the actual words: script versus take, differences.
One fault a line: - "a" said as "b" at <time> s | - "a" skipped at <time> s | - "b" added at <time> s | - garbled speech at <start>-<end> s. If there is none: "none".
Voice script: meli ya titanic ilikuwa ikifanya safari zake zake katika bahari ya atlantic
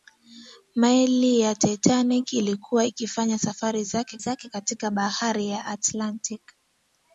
none